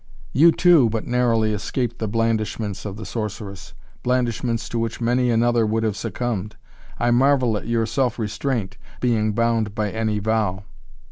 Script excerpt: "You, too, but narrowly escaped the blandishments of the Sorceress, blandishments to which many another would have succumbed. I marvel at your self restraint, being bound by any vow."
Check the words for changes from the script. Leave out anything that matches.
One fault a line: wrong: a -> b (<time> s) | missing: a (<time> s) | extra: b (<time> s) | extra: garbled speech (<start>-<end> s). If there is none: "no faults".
no faults